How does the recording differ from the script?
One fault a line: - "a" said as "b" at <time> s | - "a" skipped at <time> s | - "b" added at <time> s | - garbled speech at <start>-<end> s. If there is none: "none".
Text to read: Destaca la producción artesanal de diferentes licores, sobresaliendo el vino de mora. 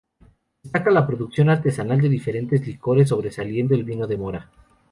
none